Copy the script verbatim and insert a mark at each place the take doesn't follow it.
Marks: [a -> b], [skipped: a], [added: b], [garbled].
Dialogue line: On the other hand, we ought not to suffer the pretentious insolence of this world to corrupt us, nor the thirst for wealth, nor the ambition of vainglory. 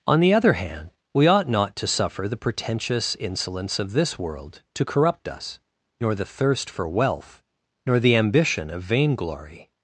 On the other hand, we ought not to suffer the pretentious insolence of this world to corrupt us, nor the thirst for wealth, nor the ambition of vainglory.